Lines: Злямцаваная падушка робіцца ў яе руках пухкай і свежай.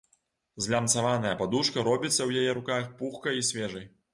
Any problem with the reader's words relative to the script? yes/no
no